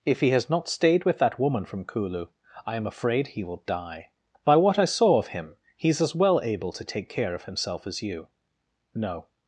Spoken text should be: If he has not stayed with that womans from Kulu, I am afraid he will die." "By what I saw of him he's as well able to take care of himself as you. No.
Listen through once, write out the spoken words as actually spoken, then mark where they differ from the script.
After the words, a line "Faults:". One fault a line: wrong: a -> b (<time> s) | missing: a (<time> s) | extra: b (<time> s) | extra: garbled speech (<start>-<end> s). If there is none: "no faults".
If he has not stayed with that woman from Kulu, I am afraid he will die." "By what I saw of him he's as well able to take care of himself as you. No.
Faults:
wrong: womans -> woman (1.4 s)